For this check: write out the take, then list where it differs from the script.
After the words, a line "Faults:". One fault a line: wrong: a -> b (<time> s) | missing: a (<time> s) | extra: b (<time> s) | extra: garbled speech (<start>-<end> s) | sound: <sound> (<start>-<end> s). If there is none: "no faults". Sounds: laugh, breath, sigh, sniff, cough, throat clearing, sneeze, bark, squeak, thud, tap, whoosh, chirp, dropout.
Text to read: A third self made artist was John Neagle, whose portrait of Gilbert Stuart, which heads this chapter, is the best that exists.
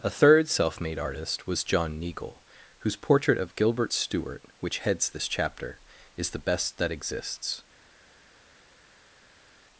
A third self made artist was John Neagle, whose portrait of Gilbert Stuart, which heads this chapter, is the best that exists.
Faults:
no faults